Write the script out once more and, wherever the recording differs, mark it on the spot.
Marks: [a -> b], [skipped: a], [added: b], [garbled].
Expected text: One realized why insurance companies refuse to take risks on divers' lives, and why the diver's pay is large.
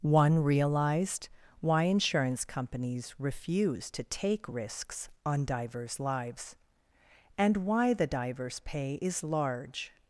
One realized why insurance companies refuse to take risks on divers' lives, and why the diver's pay is large.